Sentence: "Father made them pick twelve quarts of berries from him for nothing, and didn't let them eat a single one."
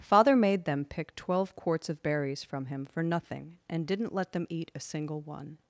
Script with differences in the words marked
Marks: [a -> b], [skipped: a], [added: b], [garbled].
"Father made them pick twelve quarts of berries from him for nothing, and didn't let them eat a single one."